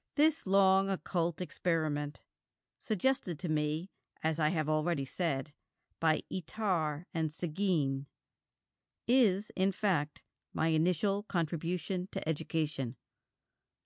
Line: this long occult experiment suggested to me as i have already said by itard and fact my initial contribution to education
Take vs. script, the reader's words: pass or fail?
fail